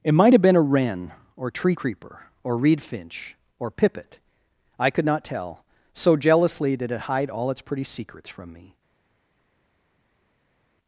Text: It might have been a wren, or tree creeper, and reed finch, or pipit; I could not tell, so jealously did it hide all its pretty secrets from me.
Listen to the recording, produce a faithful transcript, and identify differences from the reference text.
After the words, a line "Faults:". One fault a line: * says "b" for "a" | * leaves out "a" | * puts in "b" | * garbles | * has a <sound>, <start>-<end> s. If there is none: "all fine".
It might have been a wren, or tree creeper, or reed finch, or pipit; I could not tell, so jealously did it hide all its pretty secrets from me.
Faults:
* says "or" for "and"